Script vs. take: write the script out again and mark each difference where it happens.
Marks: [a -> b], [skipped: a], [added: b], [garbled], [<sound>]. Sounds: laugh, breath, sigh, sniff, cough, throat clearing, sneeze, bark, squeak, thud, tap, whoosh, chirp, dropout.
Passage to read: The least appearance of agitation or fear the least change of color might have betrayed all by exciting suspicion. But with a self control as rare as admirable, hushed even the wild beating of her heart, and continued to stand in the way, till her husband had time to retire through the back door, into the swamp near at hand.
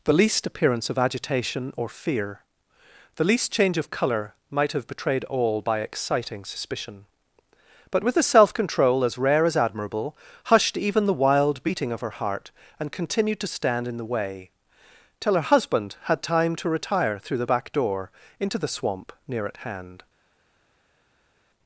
The least appearance of agitation or fear the least change of color might have betrayed all by exciting suspicion. But with a self control as rare as admirable, hushed even the wild beating of her heart, and continued to stand in the way, till her husband had time to retire through the back door, into the swamp near at hand.